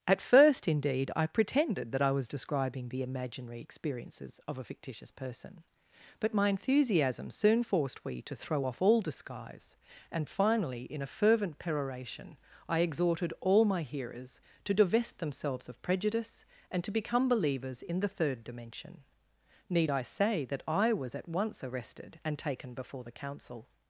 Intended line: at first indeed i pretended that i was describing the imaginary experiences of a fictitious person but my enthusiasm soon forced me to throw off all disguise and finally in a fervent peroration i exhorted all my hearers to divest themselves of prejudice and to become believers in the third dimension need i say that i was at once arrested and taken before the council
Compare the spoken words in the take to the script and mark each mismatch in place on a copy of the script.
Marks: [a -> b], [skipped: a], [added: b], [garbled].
at first indeed i pretended that i was describing the imaginary experiences of a fictitious person but my enthusiasm soon forced [me -> we] to throw off all disguise and finally in a fervent peroration i exhorted all my hearers to divest themselves of prejudice and to become believers in the third dimension need i say that i was at once arrested and taken before the council